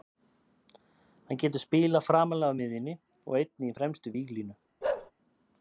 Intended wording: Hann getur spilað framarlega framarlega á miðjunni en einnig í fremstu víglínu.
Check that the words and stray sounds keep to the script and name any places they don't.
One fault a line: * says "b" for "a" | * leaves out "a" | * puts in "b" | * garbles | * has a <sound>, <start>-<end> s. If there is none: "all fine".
* leaves out "framarlega"
* says "og" for "en"
* has a bark, 4.8-5.1 s